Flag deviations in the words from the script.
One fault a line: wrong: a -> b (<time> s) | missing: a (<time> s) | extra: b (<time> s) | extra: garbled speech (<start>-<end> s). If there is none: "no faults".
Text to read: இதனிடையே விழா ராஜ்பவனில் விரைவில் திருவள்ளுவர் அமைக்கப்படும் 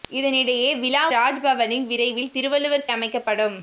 no faults